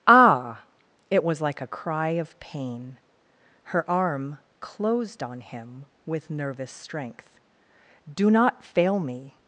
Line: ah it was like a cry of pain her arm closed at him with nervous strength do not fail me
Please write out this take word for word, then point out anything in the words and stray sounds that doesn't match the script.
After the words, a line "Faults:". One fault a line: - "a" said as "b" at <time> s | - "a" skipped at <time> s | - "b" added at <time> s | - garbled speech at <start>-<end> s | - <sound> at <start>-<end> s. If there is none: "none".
ah it was like a cry of pain her arm closed on him with nervous strength do not fail me
Faults:
- "at" said as "on" at 5.2 s